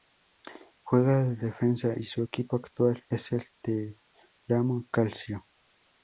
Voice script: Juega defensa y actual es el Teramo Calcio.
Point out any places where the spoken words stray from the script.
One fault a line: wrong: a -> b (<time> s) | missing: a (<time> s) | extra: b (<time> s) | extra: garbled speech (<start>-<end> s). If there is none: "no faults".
extra: de (1.2 s)
extra: su equipo (2.0 s)